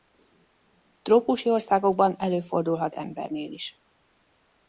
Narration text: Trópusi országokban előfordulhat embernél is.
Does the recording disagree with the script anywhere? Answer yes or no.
no